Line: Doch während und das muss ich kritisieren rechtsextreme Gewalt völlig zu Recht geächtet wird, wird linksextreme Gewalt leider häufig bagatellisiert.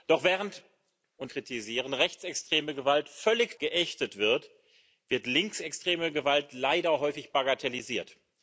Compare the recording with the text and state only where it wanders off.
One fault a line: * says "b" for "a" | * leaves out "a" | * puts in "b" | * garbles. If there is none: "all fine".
* leaves out "das muss ich"
* leaves out "zu Recht"